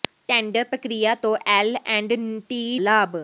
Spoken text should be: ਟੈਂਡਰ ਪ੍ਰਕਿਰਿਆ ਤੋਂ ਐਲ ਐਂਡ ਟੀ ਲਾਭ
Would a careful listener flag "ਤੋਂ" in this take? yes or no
no